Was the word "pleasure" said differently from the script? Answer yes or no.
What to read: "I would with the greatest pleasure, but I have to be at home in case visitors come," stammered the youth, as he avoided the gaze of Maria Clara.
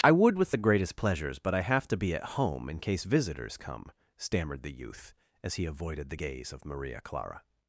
yes